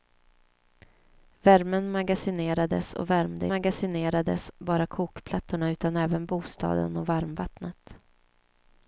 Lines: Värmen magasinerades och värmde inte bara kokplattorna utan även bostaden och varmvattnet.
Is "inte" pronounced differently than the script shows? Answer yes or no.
yes